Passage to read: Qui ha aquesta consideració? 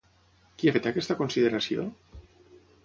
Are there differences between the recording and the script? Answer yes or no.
yes